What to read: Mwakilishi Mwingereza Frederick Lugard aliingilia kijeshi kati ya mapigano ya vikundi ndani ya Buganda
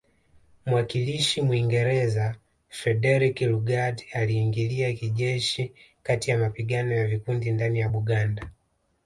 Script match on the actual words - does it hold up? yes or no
yes